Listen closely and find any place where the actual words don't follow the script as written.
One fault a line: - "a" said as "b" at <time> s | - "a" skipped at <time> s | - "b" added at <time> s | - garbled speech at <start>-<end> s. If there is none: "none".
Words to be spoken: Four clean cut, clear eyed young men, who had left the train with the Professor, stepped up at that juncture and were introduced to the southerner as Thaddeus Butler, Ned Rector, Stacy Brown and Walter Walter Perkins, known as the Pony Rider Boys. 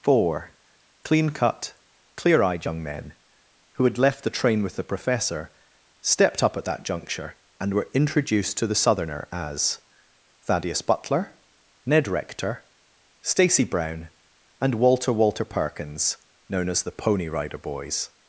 none